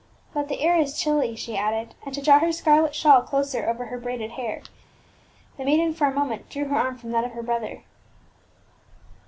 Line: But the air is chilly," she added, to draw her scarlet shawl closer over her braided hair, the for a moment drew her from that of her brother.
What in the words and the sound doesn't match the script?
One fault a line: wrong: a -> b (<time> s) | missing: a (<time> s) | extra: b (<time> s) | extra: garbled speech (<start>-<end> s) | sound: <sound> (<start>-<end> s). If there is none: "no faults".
extra: and (2.0 s)
extra: maiden (5.6 s)
extra: arm (6.8 s)